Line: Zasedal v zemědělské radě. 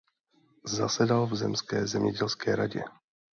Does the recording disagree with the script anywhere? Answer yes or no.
yes